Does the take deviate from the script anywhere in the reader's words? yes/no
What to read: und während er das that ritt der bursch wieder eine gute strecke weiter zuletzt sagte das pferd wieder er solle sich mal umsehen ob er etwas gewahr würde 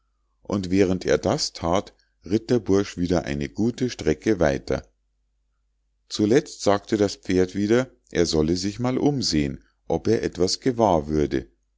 no